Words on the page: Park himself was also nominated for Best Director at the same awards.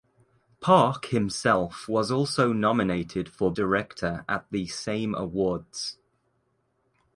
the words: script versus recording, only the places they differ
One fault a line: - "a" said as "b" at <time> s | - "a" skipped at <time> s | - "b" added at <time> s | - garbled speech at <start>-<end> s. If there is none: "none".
- "Best" skipped at 3.5 s